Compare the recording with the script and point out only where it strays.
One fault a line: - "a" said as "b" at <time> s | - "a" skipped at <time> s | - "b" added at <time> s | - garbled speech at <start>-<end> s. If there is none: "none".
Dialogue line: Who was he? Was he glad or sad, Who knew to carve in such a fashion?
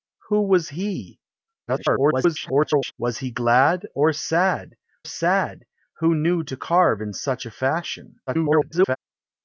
- garbled speech at 1.7-2.9 s
- "sad" added at 5.0 s
- garbled speech at 8.3-9.0 s